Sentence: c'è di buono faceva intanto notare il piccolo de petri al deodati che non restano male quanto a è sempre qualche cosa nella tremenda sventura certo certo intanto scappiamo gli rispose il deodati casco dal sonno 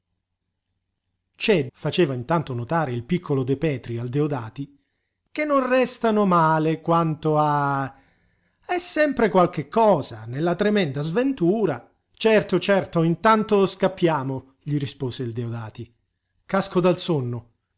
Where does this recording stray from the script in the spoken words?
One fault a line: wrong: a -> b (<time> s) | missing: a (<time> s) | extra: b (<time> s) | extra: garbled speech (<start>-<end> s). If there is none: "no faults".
missing: di buono (1.7 s)